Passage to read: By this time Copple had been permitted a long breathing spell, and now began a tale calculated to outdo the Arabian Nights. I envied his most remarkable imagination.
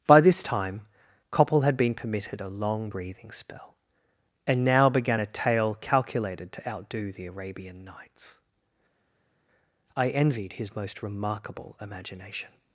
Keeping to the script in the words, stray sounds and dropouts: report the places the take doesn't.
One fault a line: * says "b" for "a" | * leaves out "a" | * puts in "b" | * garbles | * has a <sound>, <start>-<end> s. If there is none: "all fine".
all fine